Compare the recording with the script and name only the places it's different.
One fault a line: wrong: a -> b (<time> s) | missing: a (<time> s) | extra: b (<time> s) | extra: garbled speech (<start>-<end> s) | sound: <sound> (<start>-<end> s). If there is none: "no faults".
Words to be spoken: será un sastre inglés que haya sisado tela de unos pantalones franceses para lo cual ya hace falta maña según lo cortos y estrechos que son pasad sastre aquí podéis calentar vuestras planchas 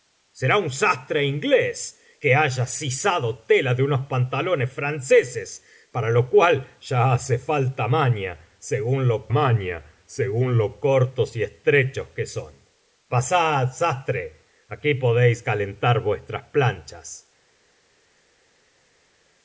extra: maña según lo (9.3 s)